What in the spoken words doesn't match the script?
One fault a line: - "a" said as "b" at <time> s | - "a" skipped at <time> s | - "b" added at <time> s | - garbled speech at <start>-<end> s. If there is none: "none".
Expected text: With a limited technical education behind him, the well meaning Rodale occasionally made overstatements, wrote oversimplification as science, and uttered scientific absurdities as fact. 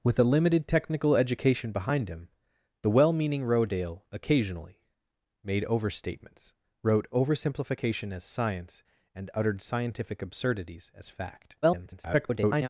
- garbled speech at 11.6-12.7 s